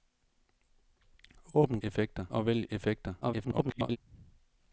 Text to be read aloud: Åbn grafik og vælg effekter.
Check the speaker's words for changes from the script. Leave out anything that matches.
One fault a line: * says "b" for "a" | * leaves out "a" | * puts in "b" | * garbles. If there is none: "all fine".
* says "effekter" for "grafik"
* garbles